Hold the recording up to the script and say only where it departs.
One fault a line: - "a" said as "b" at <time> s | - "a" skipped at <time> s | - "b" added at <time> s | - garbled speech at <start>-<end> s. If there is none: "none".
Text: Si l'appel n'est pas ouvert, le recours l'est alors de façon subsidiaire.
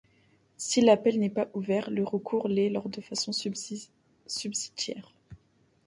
none